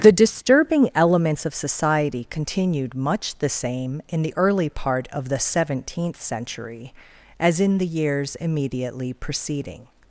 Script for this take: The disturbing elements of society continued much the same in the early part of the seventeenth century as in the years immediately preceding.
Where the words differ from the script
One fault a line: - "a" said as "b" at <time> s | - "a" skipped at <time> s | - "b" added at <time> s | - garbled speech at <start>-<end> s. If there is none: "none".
none